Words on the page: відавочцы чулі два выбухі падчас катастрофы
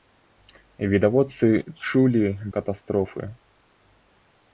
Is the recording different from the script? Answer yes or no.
yes